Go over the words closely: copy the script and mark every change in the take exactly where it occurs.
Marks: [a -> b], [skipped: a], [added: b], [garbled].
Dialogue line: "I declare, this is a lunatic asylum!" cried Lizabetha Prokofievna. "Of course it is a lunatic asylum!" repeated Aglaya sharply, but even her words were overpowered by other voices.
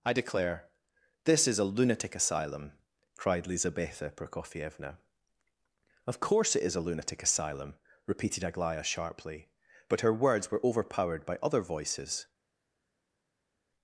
"I declare, this is a lunatic asylum!" cried Lizabetha Prokofievna. "Of course it is a lunatic asylum!" repeated Aglaya sharply, but [skipped: even] her words were overpowered by other voices.